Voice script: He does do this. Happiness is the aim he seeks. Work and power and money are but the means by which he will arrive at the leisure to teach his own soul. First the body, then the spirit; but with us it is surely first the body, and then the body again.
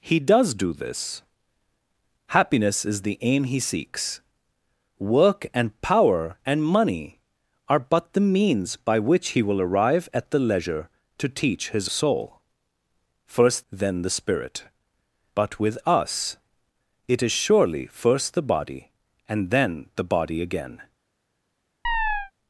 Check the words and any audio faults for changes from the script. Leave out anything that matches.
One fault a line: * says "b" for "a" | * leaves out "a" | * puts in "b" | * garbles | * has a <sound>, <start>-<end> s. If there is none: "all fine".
* leaves out "own"
* leaves out "the body"
* has a chirp, 21.8-22.3 s